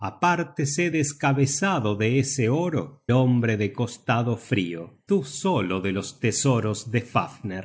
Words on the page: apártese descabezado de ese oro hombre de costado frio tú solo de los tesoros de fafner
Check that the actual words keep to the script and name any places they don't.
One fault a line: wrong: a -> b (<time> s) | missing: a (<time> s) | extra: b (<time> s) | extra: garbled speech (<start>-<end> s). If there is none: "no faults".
no faults